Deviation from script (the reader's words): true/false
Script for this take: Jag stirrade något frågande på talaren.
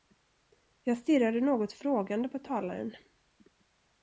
false